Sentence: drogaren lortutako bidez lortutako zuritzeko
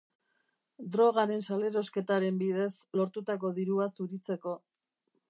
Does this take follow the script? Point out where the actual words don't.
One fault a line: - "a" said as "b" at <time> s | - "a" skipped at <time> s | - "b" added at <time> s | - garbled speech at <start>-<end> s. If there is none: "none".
- "lortutako" said as "salerosketaren" at 1.5 s
- "dirua" added at 3.6 s